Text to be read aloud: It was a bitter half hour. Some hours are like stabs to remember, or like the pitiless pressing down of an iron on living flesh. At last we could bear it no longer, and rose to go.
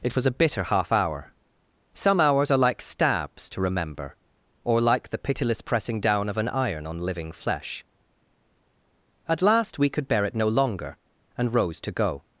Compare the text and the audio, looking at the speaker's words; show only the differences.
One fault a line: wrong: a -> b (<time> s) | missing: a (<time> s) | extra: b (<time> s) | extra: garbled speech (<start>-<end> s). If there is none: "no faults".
no faults